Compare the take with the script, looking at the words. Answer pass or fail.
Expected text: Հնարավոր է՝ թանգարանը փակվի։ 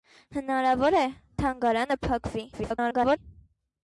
fail